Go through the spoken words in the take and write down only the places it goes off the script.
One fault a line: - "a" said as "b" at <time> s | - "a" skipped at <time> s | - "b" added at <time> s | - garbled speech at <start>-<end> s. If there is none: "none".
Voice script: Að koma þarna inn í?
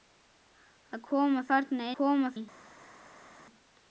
- "inn" said as "koma" at 2.0 s